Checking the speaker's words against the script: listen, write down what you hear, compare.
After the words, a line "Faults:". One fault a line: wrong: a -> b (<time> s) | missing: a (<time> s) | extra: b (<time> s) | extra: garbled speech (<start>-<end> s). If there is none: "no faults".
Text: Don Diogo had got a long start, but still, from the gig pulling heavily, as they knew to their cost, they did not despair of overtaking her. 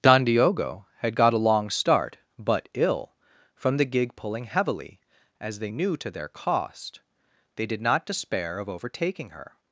Don Diogo had got a long start, but ill, from the gig pulling heavily, as they knew to their cost, they did not despair of overtaking her.
Faults:
wrong: still -> ill (2.7 s)